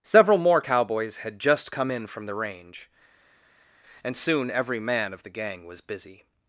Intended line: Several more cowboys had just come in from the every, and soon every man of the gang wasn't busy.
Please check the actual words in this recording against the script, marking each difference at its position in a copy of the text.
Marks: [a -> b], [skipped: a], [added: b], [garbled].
Several more cowboys had just come in from the [every, -> range] and soon every man of the gang [wasn't -> was] busy.